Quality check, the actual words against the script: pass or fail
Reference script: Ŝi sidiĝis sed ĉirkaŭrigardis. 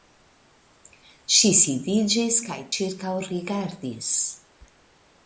fail